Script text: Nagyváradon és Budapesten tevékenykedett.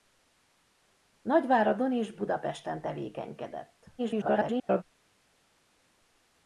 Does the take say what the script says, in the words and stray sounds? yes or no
no